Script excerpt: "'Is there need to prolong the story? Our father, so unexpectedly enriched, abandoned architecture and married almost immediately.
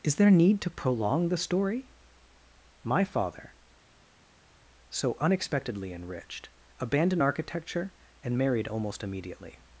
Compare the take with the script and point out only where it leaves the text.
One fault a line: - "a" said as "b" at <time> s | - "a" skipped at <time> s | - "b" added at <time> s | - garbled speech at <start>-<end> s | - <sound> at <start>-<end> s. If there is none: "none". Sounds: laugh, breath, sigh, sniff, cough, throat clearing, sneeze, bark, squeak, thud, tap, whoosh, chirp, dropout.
- "Our" said as "My" at 2.8 s